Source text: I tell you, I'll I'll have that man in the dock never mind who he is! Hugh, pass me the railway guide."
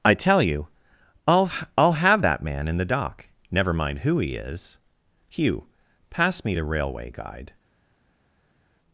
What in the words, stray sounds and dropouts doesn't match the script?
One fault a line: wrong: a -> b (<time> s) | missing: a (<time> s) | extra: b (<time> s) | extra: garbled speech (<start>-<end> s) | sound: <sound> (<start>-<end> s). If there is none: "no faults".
no faults